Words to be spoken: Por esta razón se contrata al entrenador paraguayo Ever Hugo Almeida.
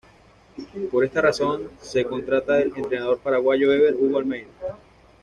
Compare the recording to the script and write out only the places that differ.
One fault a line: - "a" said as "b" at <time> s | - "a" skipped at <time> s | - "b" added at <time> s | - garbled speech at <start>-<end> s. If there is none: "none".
none